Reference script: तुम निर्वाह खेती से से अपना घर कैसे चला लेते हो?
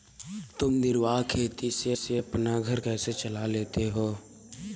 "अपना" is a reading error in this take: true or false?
false